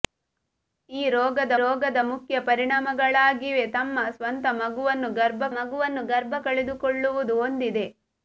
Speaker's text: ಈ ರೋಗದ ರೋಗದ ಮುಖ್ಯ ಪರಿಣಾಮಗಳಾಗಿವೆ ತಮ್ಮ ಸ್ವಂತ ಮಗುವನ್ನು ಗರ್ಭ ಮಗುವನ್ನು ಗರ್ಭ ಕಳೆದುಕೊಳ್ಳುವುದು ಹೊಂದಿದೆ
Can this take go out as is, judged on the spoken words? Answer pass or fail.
pass